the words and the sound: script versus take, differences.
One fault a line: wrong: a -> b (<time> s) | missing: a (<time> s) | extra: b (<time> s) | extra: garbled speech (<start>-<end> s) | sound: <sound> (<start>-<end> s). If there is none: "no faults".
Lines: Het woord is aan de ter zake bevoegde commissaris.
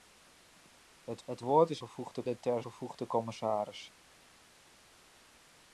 extra: het (1.2 s)
wrong: aan -> bevoegde (1.8 s)
missing: zake (2.6 s)